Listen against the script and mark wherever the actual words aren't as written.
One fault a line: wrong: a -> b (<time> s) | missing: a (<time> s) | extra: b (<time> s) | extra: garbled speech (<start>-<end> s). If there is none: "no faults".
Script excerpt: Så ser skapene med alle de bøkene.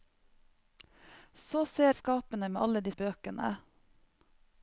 no faults